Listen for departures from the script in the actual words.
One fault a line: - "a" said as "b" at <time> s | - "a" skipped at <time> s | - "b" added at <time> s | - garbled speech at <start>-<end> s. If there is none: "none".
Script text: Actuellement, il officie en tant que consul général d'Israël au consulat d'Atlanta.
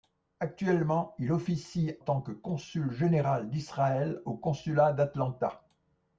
- "en" skipped at 2.0 s